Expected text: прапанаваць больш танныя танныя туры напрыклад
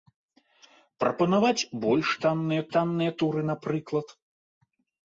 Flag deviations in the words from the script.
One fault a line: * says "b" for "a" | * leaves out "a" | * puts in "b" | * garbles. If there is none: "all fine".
all fine